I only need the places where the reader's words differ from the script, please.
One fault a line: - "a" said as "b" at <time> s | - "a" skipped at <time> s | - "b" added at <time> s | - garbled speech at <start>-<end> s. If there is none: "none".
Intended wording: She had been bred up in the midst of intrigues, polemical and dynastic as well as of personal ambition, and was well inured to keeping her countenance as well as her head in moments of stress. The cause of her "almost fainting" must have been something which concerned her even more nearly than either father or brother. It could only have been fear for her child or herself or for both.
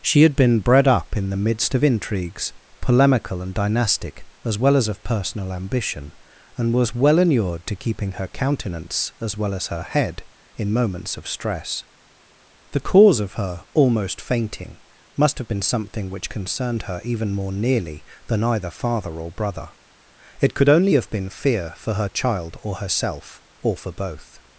none